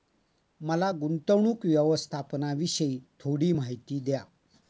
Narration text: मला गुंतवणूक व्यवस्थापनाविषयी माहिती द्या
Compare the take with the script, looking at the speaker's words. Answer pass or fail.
fail